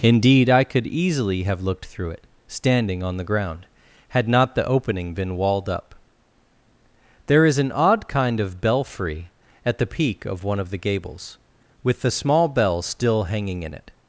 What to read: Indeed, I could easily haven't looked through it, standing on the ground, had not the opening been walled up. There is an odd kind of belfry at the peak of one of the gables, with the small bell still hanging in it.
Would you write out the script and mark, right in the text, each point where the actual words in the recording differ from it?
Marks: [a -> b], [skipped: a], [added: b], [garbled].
Indeed, I could easily [haven't -> have] looked through it, standing on the ground, had not the opening been walled up. There is an odd kind of belfry at the peak of one of the gables, with the small bell still hanging in it.